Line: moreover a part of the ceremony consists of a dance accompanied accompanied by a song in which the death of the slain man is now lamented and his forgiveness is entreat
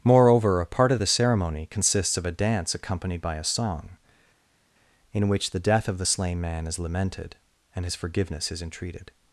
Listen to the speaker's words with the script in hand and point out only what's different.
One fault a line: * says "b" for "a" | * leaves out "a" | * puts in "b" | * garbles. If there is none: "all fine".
* leaves out "accompanied"
* leaves out "now"
* says "entreated" for "entreat"